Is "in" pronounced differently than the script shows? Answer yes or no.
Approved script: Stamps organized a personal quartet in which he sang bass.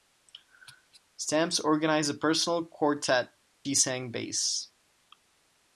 yes